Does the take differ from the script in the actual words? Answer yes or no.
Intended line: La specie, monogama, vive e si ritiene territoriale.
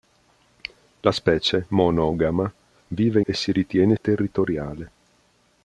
no